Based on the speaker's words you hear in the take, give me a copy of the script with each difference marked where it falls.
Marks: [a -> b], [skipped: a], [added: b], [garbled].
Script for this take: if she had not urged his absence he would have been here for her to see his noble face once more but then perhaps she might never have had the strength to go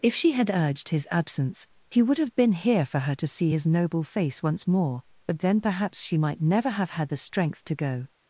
if she had [skipped: not] urged his absence he would have been here for her to see his noble face once more but then perhaps she might never have had the strength to go